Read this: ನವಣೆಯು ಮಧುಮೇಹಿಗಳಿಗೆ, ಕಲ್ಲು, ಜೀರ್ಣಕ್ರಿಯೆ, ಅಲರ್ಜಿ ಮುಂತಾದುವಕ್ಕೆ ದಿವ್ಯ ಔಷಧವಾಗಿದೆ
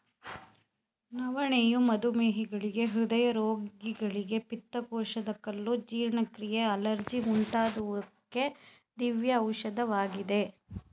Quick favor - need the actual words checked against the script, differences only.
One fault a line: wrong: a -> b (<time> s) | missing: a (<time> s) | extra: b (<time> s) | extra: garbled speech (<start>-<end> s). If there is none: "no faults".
extra: ಹೃದಯ ರೋಗಿಗಳಿಗೆ ಪಿತ್ತಕೋಶದ (2.9 s)